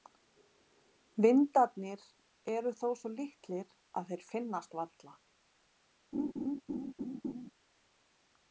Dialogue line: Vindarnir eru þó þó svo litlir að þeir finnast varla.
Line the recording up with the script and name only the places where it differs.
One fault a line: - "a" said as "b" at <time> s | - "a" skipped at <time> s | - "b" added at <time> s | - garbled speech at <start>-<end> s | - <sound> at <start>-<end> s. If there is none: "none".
- "þó" skipped at 2.9 s
- laugh at 6.1-7.5 s